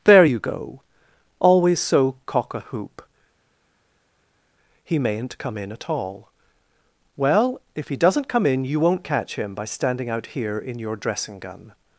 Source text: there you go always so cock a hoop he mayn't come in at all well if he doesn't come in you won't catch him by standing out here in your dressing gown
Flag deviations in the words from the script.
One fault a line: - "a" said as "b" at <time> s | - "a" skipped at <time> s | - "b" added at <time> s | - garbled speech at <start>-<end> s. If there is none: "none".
- "gown" said as "gun" at 11.4 s